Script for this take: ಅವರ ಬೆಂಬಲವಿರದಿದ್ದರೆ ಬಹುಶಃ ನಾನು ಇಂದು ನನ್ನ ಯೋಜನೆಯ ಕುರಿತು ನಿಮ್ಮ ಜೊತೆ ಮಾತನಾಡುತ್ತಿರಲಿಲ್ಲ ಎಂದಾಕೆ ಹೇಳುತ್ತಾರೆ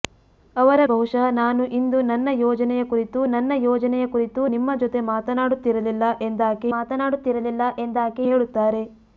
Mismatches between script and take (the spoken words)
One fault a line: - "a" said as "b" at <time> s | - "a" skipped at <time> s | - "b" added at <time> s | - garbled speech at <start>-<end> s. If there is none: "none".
- "ಬೆಂಬಲವಿರದಿದ್ದರೆ" skipped at 0.8 s
- "ನನ್ನ ಯೋಜನೆಯ ಕುರಿತು" added at 3.3 s
- "ಮಾತನಾಡುತ್ತಿರಲಿಲ್ಲ ಎಂದಾಕೆ" added at 6.7 s